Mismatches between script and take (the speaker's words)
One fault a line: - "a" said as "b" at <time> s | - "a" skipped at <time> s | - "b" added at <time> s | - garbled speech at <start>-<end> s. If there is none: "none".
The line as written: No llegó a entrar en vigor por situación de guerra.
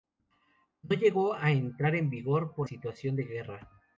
none